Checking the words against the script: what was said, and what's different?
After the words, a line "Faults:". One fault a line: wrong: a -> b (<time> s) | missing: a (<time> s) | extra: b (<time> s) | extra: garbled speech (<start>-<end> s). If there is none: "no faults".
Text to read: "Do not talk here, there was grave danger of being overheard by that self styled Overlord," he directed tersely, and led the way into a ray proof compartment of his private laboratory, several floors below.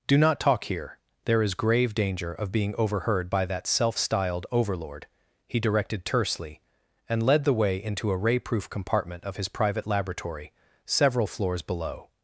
"Do not talk here, there is grave danger of being overheard by that self styled Overlord," he directed tersely, and led the way into a ray proof compartment of his private laboratory, several floors below.
Faults:
wrong: was -> is (1.4 s)